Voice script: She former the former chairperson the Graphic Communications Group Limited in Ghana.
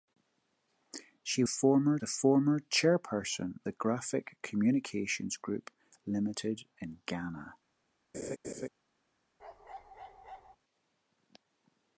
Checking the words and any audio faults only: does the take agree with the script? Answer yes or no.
no